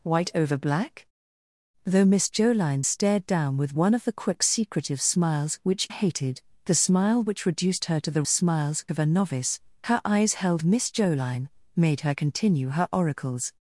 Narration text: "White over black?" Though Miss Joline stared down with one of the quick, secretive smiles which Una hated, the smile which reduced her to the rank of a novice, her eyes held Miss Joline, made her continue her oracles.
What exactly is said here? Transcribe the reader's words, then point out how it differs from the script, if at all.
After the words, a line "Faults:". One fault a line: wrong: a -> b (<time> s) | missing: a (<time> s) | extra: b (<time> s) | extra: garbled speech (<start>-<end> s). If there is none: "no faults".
"White over black?" Though Miss Joline stared down with one of the quick, secretive smiles which Hated, the smile which reduced her to the smiles of a novice, her eyes held Miss Joline, made her continue her oracles.
Faults:
missing: Una (5.9 s)
wrong: rank -> smiles (8.3 s)